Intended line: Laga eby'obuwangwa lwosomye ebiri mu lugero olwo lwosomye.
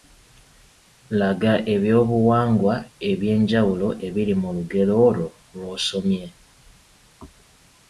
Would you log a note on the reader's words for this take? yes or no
yes